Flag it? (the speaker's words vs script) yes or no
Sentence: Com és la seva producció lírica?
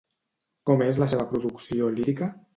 no